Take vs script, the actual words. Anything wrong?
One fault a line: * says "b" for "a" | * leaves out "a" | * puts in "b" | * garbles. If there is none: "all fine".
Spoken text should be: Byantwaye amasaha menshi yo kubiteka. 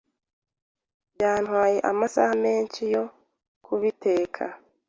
all fine